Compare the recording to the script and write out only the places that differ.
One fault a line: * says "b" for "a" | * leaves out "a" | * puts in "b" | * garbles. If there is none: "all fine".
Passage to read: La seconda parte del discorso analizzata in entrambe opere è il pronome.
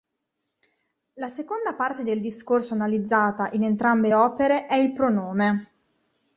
all fine